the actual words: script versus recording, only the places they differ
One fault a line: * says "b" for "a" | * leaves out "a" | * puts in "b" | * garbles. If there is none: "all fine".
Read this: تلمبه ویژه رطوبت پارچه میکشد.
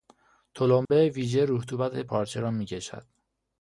* puts in "را"